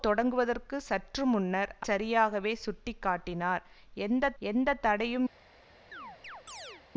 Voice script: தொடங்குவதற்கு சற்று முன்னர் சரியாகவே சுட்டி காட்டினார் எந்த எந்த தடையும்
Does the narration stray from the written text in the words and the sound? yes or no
yes